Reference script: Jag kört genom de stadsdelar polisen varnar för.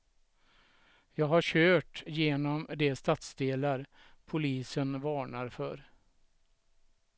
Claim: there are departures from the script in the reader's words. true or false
true